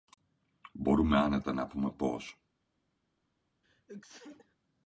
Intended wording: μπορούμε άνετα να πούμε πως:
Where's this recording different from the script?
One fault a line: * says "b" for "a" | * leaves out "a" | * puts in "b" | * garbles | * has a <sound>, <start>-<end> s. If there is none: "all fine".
* has a sneeze, 3.6-4.6 s